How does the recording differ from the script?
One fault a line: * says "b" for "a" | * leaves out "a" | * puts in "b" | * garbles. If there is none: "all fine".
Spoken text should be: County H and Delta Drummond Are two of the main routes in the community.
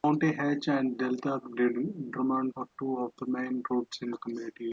all fine